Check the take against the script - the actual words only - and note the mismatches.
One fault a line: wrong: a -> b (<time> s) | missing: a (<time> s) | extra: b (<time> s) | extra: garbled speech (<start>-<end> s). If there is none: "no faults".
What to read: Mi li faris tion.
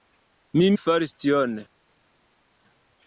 no faults